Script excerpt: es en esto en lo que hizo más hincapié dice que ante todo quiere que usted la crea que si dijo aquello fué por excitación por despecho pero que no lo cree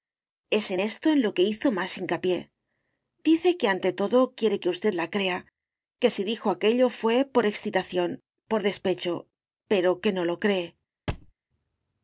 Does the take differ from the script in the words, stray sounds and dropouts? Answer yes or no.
yes